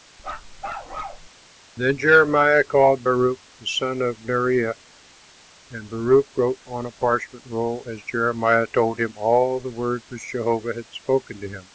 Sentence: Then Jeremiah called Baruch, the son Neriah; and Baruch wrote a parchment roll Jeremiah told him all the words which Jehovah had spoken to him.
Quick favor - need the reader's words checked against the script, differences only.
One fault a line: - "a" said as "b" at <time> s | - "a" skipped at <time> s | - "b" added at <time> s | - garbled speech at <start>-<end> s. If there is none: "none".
- "of" added at 4.0 s
- "on" added at 6.6 s
- "as" added at 7.9 s